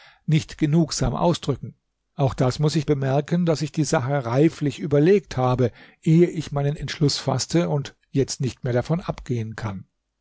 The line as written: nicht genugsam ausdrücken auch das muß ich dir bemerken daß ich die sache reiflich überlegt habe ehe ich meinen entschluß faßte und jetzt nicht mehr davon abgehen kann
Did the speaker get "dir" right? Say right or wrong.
wrong